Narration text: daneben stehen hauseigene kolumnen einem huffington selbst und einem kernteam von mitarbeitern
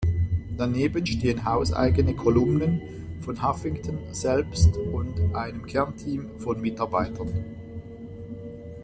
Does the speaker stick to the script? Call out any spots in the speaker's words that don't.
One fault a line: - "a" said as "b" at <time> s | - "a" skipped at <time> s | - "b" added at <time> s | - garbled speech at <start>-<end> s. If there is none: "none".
- "einem" said as "von" at 3.2 s